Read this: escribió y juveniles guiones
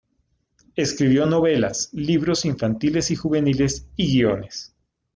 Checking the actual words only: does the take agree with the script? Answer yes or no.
no